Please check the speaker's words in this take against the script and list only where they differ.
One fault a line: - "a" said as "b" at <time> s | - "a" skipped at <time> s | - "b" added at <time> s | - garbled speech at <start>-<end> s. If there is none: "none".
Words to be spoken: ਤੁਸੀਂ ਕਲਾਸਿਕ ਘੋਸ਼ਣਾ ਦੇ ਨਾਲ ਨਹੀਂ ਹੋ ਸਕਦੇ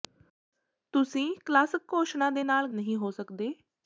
none